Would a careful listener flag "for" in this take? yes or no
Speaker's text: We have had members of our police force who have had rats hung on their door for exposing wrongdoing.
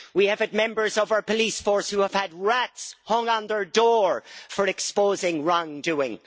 no